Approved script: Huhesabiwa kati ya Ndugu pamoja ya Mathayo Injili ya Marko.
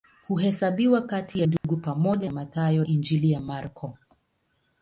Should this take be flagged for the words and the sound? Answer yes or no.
yes